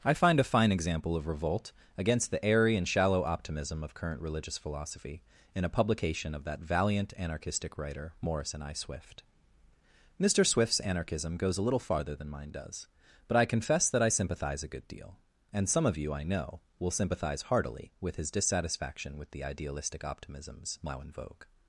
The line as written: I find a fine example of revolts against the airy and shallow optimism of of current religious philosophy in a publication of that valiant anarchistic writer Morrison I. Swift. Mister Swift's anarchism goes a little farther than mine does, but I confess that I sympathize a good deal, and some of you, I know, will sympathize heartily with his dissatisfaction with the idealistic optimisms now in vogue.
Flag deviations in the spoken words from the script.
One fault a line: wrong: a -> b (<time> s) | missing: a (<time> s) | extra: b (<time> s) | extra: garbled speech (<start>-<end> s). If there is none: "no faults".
wrong: revolts -> revolt (1.3 s)
missing: of (3.9 s)